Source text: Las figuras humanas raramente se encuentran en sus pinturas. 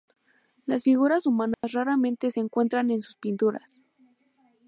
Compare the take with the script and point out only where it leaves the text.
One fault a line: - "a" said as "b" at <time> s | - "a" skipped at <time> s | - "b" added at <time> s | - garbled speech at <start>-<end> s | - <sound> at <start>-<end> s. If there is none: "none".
- dropout at 1.5-1.6 s